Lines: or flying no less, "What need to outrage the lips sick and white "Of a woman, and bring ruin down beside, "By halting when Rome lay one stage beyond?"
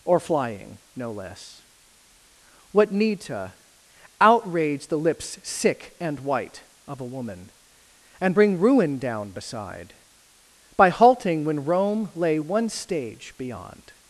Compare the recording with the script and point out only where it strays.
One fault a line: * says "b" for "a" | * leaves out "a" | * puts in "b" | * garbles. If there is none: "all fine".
all fine